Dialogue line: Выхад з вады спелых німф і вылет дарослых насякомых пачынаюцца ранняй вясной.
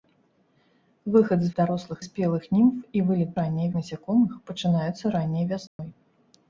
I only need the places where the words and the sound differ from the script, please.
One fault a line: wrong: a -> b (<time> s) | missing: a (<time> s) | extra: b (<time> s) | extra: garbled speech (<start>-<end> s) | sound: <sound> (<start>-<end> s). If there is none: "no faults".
wrong: вады -> дарослых (1.6 s)
wrong: дарослых -> ранняй (3.4 s)
sound: dropout (5.7-5.8 s)